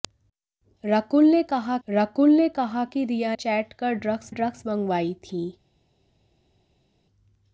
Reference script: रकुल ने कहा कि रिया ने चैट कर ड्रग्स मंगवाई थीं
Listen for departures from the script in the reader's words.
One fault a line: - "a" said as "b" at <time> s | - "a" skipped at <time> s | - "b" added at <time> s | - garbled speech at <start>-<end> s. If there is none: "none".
- "रकुल ने कहा" added at 1.9 s
- "ने" skipped at 3.3 s
- "ड्रग्स" added at 4.3 s